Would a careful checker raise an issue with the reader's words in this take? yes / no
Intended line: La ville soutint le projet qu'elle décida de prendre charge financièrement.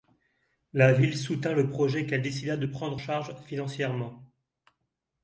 no